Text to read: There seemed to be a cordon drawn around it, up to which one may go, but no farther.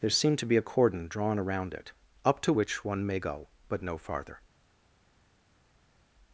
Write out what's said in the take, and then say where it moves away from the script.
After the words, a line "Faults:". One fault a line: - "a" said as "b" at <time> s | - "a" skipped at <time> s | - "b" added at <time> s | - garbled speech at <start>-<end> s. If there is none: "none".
There seemed to be a cordon drawn around it, up to which one may go, but no farther.
Faults:
none